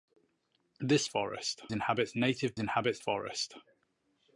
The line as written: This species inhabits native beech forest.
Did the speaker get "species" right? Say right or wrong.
wrong